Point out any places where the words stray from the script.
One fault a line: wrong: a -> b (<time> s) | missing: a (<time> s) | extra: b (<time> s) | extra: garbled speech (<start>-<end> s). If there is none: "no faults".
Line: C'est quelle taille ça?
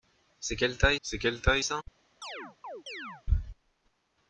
extra: c'est quelle taille (1.0 s)